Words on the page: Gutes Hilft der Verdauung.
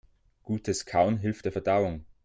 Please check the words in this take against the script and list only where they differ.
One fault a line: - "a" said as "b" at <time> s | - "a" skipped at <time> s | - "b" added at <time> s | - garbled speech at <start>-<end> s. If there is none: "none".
- "Kauen" added at 0.8 s